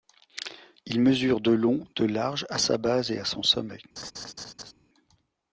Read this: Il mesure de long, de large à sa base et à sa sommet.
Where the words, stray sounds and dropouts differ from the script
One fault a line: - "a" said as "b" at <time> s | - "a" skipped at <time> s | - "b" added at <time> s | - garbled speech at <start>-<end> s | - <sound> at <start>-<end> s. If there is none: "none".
- "sa" said as "son" at 3.2 s
- laugh at 4.0-4.7 s